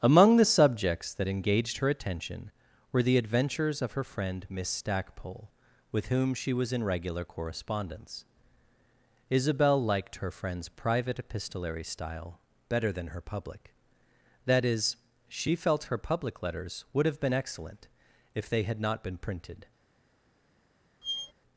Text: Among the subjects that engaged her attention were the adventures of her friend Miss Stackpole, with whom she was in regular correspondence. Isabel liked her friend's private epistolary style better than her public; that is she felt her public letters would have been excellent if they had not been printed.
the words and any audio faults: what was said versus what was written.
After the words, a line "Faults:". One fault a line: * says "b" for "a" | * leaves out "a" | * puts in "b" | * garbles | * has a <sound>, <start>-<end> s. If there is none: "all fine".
Among the subjects that engaged her attention were the adventures of her friend Miss Stackpole, with whom she was in regular correspondence. Isabel liked her friend's private epistolary style better than her public; that is she felt her public letters would have been excellent if they had not been printed.
Faults:
* has a squeak, 21.0-21.3 s